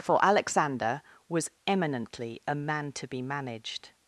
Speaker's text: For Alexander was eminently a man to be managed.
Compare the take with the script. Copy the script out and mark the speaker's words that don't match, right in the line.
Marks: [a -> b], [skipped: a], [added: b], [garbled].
For Alexander was eminently a man to be managed.